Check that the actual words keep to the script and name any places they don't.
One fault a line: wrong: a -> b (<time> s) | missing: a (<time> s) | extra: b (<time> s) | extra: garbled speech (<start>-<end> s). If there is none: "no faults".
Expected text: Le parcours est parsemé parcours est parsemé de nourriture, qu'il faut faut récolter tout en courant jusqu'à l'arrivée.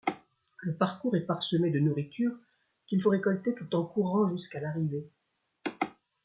missing: parcours est parsemé (1.7 s)
missing: faut (3.1 s)